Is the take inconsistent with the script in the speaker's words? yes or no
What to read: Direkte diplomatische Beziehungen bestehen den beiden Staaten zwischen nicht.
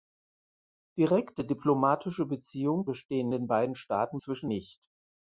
no